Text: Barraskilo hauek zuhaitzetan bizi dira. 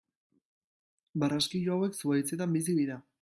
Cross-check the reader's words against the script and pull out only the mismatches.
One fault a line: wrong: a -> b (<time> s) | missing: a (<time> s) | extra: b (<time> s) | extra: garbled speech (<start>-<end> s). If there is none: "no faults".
no faults